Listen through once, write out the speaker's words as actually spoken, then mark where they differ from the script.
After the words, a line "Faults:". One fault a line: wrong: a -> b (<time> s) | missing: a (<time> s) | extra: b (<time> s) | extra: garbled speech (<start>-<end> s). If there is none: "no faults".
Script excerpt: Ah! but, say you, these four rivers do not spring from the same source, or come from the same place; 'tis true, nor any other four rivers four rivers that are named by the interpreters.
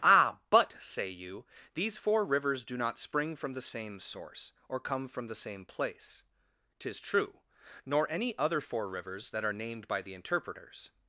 Ah! but, say you, these four rivers do not spring from the same source, or come from the same place; 'tis true, nor any other four rivers that are named by the interpreters.
Faults:
missing: four rivers (9.3 s)